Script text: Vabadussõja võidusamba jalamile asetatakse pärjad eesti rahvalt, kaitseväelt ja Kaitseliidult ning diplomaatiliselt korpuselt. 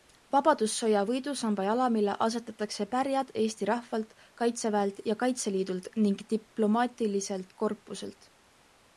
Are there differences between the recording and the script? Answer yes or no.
no